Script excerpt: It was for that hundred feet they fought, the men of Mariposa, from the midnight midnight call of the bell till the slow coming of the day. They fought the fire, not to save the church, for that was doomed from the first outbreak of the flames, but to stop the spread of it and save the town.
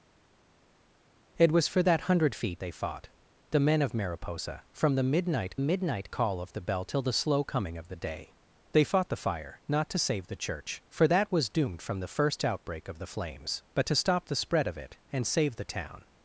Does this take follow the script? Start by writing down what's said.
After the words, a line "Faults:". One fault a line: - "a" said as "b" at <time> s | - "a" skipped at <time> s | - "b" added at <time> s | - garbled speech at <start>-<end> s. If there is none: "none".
It was for that hundred feet they fought, the men of Mariposa, from the midnight midnight call of the bell till the slow coming of the day. They fought the fire, not to save the church, for that was doomed from the first outbreak of the flames, but to stop the spread of it and save the town.
Faults:
none